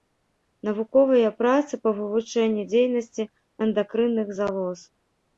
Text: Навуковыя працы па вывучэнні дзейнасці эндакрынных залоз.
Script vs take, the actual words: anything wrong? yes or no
no